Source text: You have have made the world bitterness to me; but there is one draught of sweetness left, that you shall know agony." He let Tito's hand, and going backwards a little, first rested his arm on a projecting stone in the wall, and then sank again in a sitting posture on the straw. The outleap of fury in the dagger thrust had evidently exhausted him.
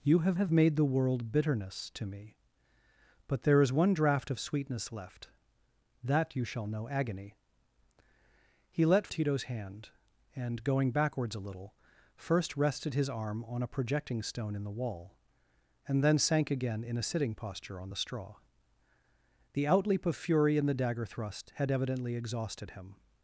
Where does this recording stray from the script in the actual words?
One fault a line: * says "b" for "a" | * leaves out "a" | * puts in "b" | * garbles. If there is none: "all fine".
all fine